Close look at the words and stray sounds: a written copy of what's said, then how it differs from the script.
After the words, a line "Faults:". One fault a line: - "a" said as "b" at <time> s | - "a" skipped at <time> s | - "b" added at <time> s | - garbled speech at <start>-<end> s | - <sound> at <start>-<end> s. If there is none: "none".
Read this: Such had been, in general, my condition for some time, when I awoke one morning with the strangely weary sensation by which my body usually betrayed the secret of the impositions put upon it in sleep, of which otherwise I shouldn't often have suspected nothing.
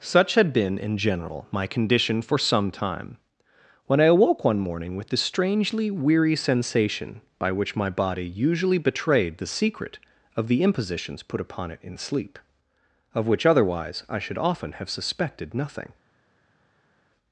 Such had been, in general, my condition for some time, when I awoke one morning with the strangely weary sensation by which my body usually betrayed the secret of the impositions put upon it in sleep, of which otherwise I should often have suspected nothing.
Faults:
- "shouldn't" said as "should" at 14.2 s